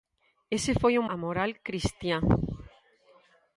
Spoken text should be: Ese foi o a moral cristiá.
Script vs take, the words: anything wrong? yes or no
no